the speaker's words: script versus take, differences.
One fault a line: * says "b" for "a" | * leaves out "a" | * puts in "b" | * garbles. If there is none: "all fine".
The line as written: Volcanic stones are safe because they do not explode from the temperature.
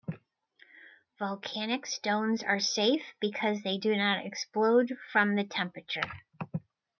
all fine